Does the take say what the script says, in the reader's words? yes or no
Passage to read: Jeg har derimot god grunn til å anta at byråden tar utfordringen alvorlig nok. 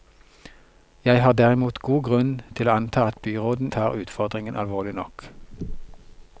yes